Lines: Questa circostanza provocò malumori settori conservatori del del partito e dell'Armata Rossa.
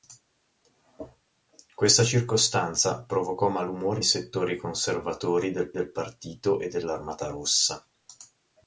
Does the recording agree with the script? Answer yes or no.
yes